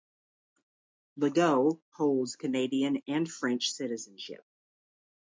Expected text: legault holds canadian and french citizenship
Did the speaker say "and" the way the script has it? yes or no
yes